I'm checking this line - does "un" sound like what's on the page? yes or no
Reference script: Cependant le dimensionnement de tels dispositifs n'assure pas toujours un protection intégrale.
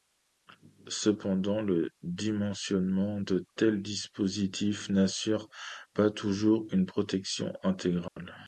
no